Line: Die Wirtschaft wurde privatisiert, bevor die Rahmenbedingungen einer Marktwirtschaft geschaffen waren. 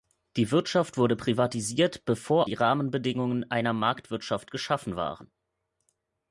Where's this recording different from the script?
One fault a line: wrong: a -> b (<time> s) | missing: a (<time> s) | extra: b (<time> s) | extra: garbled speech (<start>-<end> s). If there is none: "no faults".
no faults